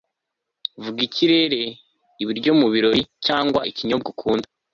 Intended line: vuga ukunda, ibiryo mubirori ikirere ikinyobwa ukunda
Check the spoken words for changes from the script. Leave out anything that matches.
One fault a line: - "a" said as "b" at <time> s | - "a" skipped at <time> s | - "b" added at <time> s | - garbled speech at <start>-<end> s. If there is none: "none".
- "ukunda" said as "ikirere" at 1.1 s
- "ikirere" said as "cyangwa" at 3.3 s